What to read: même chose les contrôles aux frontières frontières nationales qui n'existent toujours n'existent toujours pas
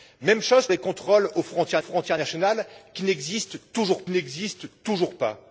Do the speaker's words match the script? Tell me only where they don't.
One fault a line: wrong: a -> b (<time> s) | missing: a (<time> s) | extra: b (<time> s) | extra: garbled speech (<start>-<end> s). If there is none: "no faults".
no faults